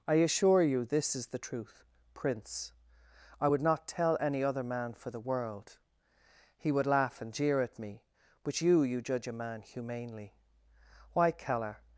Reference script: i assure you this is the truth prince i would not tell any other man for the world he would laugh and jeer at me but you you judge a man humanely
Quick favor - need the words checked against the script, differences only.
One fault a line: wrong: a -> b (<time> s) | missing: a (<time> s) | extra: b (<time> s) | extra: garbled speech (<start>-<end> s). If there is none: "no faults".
extra: why keller (11.1 s)